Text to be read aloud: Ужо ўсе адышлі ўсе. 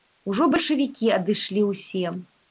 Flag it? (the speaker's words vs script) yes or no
yes